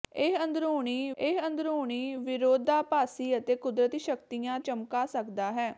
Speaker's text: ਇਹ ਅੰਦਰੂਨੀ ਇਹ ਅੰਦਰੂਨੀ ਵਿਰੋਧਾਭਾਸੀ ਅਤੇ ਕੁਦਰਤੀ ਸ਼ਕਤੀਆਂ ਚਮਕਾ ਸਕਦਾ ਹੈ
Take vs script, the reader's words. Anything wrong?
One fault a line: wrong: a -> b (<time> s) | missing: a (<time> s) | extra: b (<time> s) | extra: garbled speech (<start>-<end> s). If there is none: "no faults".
no faults